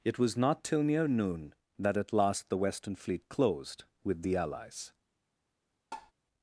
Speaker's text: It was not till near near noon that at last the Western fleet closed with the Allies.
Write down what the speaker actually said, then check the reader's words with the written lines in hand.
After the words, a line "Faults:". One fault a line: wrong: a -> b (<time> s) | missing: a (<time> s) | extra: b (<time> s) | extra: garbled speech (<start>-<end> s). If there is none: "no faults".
It was not till near noon that at last the Western fleet closed with the Allies.
Faults:
missing: near (1.1 s)